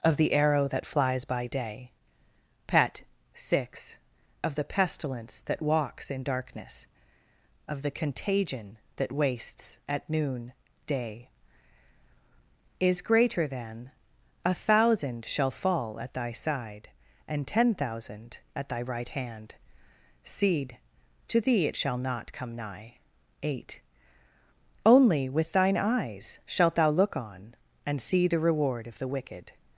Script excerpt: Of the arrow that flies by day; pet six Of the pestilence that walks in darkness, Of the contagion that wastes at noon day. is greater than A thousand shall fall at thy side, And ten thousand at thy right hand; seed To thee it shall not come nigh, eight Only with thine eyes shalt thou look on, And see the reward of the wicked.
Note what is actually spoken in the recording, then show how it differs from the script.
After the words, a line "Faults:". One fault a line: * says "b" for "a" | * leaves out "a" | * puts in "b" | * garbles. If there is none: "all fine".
Of the arrow that flies by day; pet six Of the pestilence that walks in darkness, Of the contagion that wastes at noon day. is greater than A thousand shall fall at thy side, And ten thousand at thy right hand; seed To thee it shall not come nigh, eight Only with thine eyes shalt thou look on, And see the reward of the wicked.
Faults:
all fine